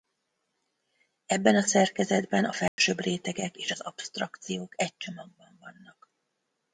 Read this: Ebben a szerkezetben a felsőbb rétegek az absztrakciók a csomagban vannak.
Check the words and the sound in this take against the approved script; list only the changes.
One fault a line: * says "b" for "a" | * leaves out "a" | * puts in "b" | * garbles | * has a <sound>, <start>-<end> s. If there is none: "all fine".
* has a dropout, 2.7-2.8 s
* puts in "és"
* says "egy" for "a"